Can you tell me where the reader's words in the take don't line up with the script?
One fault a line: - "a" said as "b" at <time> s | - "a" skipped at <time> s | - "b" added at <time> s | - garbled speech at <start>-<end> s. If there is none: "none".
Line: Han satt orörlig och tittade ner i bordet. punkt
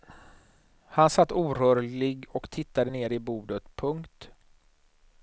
none